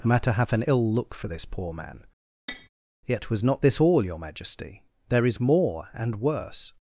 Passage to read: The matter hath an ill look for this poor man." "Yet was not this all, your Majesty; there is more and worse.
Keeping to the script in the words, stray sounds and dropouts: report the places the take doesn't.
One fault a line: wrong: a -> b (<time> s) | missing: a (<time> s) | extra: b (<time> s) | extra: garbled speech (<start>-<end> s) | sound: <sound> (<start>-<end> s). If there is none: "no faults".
sound: tap (2.5-2.7 s)